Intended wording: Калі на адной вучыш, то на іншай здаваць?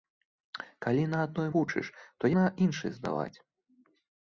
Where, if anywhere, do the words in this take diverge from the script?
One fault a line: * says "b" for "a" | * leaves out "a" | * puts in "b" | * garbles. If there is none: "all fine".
all fine